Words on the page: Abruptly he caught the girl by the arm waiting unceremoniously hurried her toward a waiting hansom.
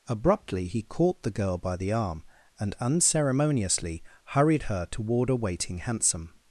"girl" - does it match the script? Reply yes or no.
yes